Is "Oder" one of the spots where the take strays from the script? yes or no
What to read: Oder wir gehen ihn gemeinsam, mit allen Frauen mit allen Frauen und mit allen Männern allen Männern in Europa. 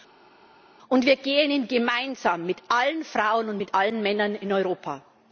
yes